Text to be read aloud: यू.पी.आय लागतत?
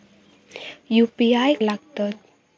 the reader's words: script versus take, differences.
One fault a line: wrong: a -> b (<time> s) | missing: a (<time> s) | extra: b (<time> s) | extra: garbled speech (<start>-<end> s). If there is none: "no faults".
no faults